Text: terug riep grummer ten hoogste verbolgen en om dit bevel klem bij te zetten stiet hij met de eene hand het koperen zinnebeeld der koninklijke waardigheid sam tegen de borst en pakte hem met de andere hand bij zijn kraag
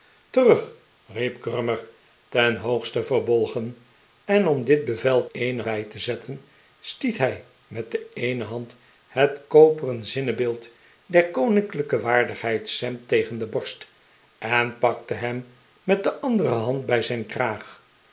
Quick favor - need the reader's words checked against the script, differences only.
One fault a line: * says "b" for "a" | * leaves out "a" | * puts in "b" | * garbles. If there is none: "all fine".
* says "eene" for "klem"